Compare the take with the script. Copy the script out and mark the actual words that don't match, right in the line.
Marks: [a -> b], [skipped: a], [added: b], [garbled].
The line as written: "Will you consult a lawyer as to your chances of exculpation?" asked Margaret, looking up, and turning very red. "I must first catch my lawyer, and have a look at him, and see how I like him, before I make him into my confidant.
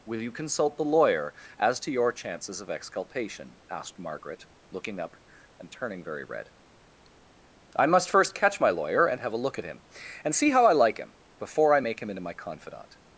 "Will you consult [a -> the] lawyer as to your chances of exculpation?" asked Margaret, looking up, and turning very red. "I must first catch my lawyer, and have a look at him, and see how I like him, before I make him into my confidant.